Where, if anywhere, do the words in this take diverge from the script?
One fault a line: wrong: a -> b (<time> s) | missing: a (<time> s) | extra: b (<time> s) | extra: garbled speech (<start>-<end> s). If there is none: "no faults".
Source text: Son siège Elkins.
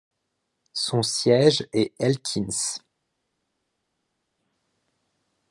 extra: est (1.7 s)